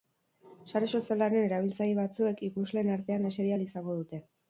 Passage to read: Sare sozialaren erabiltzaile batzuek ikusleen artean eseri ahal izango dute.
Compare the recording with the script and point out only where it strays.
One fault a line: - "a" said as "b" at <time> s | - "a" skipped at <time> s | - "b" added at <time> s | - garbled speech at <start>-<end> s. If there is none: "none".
none